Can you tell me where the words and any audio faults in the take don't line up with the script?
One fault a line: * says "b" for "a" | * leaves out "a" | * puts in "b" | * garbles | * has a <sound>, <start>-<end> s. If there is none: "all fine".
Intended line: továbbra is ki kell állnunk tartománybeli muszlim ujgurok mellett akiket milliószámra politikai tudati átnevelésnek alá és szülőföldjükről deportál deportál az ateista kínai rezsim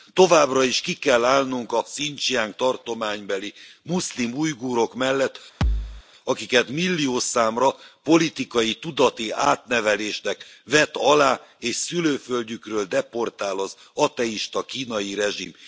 * puts in "a hszincsiang"
* has a thud, 5.6-6.0 s
* puts in "vet"
* leaves out "deportál"